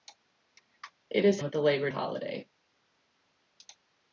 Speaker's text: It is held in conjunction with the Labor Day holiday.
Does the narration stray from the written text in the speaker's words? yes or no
yes